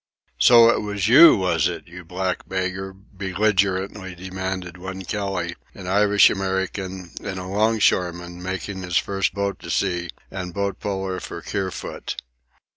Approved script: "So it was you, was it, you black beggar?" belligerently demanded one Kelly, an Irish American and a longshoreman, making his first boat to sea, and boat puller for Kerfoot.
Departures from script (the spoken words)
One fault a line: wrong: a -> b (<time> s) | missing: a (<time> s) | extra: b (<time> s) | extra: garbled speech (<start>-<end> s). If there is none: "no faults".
no faults